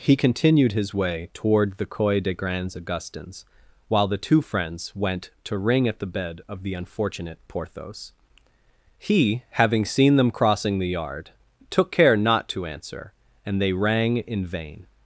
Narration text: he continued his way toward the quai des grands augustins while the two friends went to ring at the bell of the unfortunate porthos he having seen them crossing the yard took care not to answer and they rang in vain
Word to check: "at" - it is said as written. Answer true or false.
true